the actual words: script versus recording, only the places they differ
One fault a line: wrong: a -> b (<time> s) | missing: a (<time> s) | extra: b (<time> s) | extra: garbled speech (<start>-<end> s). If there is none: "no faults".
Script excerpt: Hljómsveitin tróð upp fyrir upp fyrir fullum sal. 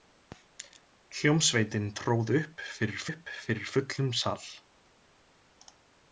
no faults